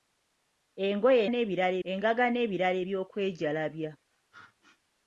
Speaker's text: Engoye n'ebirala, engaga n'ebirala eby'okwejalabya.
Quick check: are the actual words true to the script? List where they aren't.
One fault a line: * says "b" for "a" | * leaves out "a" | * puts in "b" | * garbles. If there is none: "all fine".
all fine